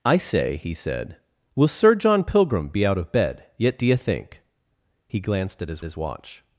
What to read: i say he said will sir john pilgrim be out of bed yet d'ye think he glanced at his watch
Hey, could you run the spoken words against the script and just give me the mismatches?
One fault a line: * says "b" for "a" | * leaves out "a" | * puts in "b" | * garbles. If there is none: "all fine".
* puts in "his"